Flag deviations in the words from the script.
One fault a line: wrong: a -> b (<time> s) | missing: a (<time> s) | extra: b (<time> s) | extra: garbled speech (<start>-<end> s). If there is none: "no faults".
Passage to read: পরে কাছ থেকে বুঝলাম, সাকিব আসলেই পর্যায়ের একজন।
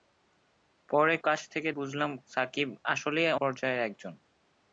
no faults